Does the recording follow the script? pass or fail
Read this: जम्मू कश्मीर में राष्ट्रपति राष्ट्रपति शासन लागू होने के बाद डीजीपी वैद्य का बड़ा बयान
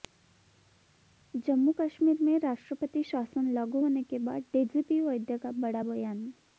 fail